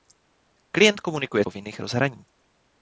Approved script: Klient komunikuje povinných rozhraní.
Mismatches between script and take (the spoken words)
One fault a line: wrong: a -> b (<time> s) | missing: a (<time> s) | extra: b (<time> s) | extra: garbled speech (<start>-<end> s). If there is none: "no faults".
no faults